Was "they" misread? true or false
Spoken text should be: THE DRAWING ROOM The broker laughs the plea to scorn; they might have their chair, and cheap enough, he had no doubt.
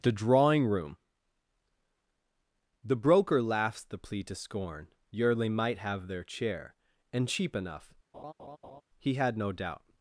true